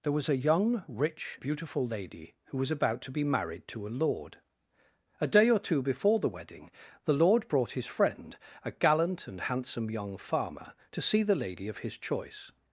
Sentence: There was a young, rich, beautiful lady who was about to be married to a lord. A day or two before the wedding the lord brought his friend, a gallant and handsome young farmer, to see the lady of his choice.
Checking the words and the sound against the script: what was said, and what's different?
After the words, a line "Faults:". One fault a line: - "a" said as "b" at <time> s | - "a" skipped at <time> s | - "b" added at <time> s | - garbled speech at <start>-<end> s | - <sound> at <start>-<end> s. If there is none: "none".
There was a young, rich, beautiful lady who was about to be married to a lord. A day or two before the wedding the lord brought his friend, a gallant and handsome young farmer, to see the lady of his choice.
Faults:
none